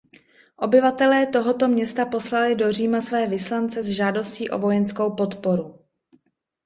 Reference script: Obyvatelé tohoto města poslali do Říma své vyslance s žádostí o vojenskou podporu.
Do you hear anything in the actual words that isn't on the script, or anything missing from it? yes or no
no